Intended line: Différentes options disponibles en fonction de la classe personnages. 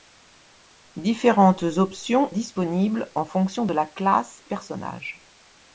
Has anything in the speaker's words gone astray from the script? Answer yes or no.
no